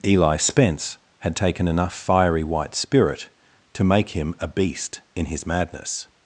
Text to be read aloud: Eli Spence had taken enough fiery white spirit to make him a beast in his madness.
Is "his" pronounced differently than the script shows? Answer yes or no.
no